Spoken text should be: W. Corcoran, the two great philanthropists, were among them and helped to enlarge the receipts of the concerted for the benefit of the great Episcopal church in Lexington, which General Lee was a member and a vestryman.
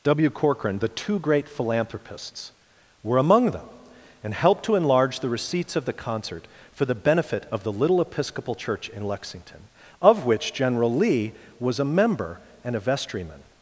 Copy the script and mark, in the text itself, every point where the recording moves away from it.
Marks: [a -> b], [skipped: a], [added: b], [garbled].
W. Corcoran, the two great philanthropists, were among them and helped to enlarge the receipts of the [concerted -> concert] for the benefit of the [great -> little] Episcopal church in Lexington, [added: of] which General Lee was a member and a vestryman.